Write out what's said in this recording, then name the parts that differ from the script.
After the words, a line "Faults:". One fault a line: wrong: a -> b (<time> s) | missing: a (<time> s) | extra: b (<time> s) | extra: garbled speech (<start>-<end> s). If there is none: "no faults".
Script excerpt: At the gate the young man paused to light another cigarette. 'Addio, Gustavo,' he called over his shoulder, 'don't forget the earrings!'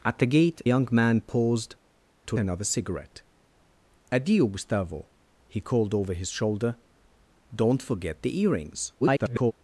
At the gate young man paused to another cigarette. 'Addio, Gustavo,' he called over his shoulder, 'don't forget the earrings!' [garbled]
Faults:
missing: the (0.6 s)
missing: light (2.4 s)
extra: garbled speech (9.0-9.5 s)